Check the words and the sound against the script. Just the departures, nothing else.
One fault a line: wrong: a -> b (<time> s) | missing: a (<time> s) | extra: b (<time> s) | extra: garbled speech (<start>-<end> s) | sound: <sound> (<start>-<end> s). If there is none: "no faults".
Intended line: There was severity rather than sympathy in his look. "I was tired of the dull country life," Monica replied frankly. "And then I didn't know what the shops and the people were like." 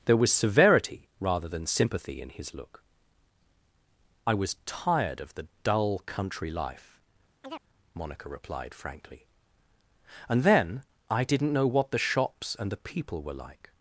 sound: chirp (7.4-7.6 s)